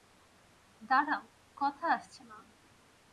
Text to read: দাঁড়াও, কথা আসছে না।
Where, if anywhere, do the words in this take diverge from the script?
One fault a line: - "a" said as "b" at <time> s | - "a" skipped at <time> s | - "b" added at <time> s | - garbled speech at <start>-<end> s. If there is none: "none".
none